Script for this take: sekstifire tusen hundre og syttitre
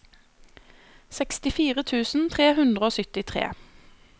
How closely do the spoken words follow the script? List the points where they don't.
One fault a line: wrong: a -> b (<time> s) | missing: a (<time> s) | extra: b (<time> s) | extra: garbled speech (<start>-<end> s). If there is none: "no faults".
extra: tre (2.4 s)